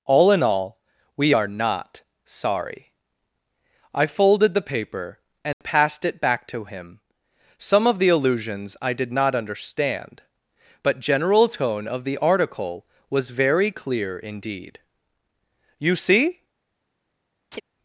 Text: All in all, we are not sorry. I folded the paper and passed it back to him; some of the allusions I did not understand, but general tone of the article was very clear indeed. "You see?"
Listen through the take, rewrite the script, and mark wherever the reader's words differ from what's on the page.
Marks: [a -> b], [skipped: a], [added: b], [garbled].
All in all, we are not sorry. I folded the paper and passed it back to him; some of the allusions I did not understand, but general tone of the article was very clear indeed. "You see?"